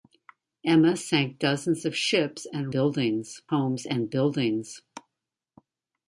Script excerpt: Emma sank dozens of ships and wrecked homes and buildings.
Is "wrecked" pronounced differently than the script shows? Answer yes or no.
yes